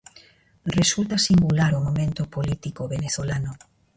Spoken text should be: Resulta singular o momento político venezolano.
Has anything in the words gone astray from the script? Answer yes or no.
no